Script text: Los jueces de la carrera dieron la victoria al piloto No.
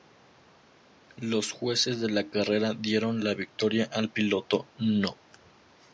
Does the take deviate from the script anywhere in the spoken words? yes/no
no